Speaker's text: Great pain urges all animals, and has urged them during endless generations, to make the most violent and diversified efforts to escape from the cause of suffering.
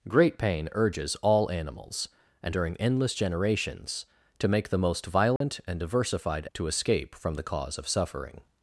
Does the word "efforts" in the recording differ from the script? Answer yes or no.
yes